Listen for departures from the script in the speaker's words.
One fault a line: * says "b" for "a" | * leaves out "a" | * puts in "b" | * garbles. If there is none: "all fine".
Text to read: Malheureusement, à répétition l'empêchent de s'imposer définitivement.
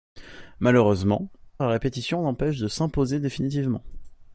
all fine